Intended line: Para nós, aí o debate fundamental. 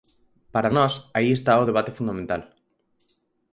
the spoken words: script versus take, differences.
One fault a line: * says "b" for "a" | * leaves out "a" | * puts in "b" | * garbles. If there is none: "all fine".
* puts in "está"